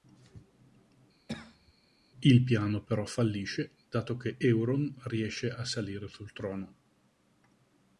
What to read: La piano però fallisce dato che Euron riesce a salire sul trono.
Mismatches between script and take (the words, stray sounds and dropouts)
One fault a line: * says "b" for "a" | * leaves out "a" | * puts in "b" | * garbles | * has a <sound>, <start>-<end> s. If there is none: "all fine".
* has a cough, 1.3-1.7 s
* says "Il" for "La"